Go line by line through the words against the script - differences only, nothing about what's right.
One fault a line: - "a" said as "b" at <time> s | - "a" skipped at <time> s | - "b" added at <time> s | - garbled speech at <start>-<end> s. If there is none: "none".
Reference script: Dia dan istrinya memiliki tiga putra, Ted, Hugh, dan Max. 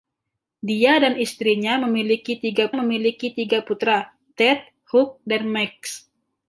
- "memiliki tiga" added at 2.7 s